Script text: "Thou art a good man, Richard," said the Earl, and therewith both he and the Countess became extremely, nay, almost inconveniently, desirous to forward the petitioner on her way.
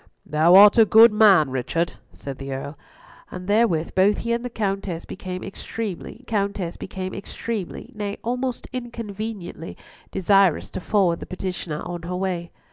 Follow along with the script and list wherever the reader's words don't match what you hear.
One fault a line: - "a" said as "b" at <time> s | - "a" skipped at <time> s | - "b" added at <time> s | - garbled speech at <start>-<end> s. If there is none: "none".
- "Countess became extremely" added at 6.2 s